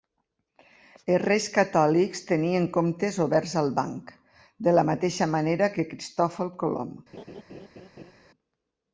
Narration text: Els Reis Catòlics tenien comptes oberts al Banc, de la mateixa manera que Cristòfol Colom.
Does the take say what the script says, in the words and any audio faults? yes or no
no